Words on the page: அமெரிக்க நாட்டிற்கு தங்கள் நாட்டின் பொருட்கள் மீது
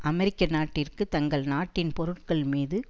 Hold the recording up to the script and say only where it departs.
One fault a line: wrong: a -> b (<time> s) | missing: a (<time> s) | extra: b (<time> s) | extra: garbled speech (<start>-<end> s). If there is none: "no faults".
no faults